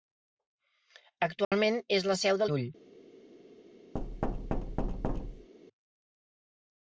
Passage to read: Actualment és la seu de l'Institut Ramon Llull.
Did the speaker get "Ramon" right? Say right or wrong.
wrong